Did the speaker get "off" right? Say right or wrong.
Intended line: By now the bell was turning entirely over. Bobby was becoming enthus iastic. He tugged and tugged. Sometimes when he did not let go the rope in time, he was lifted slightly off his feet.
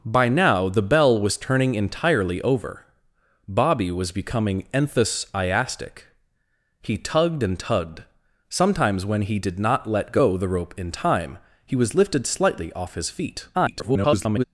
right